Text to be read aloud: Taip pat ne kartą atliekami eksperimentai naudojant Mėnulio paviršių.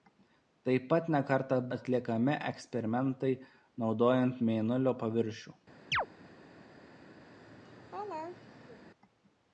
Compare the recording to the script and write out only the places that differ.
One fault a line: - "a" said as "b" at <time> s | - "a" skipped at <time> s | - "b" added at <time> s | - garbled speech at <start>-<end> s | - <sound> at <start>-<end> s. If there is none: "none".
- chirp at 5.9-6.1 s
- laugh at 7.2-8.8 s